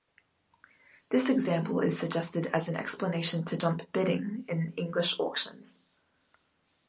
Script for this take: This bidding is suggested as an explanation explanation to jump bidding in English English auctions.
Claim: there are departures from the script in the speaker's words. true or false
true